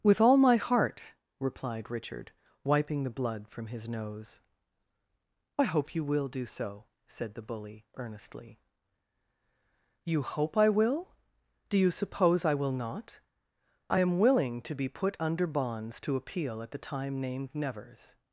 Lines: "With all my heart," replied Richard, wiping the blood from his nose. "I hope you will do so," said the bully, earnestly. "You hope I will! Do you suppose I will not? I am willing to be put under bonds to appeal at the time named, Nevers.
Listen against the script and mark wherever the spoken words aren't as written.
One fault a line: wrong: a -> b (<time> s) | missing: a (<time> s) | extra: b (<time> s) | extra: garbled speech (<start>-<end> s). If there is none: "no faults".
no faults